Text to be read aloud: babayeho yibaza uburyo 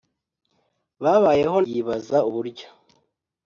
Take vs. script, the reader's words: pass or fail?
pass